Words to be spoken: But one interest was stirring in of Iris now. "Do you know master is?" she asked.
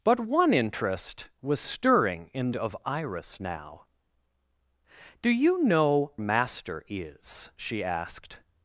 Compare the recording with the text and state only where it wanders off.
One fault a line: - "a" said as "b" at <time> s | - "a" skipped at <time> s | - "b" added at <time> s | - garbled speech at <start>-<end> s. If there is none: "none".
none